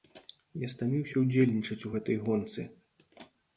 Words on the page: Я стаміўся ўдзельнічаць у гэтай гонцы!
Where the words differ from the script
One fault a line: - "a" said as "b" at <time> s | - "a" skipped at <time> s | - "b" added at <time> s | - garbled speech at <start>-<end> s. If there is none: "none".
none